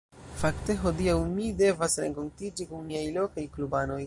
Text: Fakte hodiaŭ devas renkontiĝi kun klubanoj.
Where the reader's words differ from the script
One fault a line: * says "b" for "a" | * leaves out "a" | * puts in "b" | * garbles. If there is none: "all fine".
* puts in "mi"
* puts in "miaj lokaj"